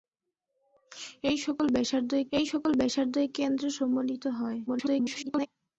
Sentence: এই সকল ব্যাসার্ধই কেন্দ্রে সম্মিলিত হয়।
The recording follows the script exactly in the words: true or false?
false